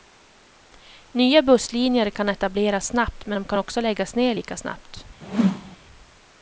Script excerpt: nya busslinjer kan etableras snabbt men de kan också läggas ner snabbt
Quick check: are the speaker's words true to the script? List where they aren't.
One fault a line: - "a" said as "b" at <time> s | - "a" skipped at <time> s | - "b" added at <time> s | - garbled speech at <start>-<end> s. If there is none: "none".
- "lika" added at 4.3 s